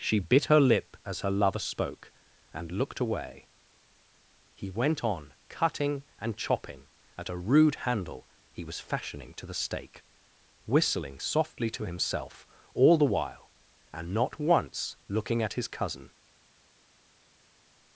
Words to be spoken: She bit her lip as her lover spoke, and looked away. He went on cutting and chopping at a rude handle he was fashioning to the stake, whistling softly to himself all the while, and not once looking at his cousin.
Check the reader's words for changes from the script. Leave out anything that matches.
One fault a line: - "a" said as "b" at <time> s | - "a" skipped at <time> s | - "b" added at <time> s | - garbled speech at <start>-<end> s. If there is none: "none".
none